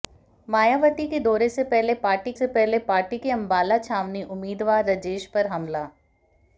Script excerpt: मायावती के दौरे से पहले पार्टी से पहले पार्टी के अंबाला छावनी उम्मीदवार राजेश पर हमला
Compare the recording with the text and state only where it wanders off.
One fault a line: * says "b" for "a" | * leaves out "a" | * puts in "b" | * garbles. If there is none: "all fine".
all fine